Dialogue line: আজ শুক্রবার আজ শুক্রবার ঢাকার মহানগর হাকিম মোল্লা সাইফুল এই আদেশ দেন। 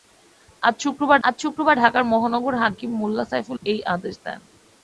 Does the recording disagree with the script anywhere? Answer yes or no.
no